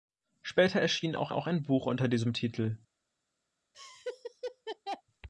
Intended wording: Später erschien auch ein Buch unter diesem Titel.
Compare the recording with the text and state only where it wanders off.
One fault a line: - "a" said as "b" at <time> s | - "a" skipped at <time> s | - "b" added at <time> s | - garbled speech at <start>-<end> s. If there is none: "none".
- "auch" added at 1.3 s